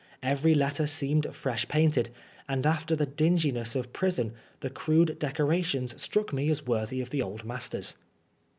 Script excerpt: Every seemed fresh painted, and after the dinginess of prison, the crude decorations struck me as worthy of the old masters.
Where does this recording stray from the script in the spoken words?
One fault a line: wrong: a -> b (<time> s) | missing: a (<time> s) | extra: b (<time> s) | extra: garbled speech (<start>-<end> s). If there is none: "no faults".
extra: letter (0.6 s)